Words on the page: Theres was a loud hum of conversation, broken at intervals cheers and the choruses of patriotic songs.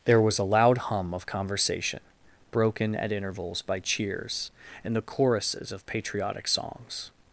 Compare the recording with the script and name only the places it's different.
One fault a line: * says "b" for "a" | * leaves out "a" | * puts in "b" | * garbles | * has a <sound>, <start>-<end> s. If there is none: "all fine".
* says "There" for "Theres"
* puts in "by"